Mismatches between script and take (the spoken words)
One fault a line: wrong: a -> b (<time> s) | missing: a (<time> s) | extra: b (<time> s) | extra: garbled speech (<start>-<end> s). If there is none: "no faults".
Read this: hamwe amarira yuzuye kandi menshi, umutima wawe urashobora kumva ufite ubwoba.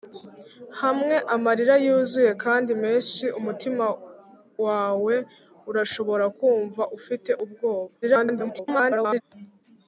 extra: garbled speech (8.0-9.2 s)